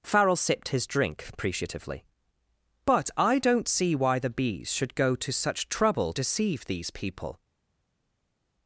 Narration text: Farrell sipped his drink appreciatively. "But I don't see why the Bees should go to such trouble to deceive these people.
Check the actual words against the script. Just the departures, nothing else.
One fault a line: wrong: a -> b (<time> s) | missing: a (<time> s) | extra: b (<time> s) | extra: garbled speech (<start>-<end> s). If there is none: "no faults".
missing: to (6.1 s)